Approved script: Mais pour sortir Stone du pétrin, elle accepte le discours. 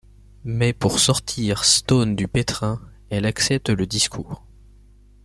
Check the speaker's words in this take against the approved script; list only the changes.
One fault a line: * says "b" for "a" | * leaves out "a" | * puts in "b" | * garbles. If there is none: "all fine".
all fine